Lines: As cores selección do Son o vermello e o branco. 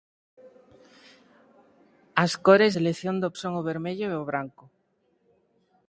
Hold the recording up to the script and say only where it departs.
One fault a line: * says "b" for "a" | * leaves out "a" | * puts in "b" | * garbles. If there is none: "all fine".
all fine